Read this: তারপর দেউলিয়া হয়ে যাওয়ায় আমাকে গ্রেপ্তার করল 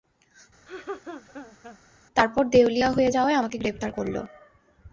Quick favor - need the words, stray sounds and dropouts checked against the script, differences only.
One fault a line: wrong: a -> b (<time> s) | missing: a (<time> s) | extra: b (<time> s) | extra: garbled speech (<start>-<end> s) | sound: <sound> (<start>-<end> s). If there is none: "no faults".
sound: laugh (0.7-1.8 s)